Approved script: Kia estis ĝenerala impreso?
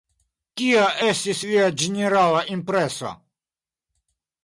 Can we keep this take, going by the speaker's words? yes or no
no